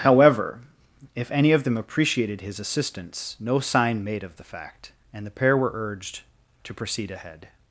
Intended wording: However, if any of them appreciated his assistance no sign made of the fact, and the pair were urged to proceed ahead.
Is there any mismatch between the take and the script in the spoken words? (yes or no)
no